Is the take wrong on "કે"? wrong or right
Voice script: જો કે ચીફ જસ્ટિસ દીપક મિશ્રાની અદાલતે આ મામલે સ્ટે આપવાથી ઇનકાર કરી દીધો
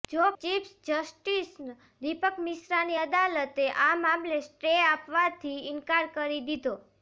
wrong